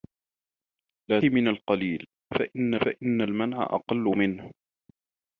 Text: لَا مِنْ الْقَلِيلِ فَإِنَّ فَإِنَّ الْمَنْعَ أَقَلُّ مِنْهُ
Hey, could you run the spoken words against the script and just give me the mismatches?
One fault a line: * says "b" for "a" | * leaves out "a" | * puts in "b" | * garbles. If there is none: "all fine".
all fine